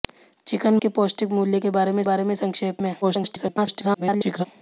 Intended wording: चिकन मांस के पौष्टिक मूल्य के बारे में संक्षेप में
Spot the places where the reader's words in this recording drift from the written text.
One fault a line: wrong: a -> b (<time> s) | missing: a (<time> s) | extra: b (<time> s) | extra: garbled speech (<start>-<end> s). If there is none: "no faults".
missing: मांस (0.8 s)
extra: बारे में (2.0 s)
extra: garbled speech (3.0-4.5 s)